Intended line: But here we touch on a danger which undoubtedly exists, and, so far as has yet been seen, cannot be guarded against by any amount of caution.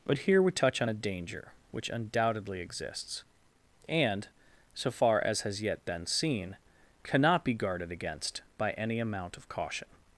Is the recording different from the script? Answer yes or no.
no